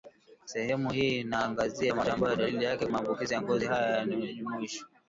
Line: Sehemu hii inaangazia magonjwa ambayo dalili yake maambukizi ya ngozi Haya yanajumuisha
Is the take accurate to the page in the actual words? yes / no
yes